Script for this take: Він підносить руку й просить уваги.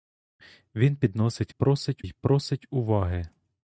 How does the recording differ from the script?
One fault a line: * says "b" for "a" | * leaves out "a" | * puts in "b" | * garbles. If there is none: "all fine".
* says "просить" for "руку"